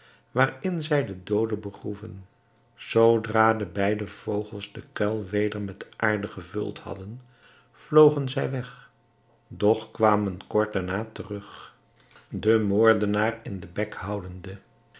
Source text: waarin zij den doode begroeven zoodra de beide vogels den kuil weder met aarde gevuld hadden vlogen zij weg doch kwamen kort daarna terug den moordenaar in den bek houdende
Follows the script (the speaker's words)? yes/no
yes